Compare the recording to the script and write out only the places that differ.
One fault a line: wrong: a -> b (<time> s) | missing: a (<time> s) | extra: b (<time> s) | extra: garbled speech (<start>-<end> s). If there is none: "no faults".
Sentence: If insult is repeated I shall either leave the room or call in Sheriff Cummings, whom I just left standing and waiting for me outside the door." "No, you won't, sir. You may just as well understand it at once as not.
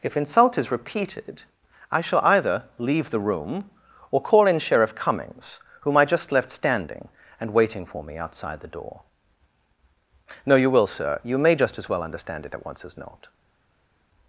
wrong: won't -> will (10.7 s)